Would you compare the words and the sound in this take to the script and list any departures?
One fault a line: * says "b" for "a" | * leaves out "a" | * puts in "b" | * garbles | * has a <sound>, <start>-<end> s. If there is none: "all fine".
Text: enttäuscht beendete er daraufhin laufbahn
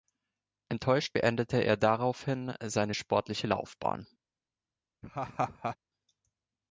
* puts in "seine sportliche"
* has a laugh, 5.0-5.8 s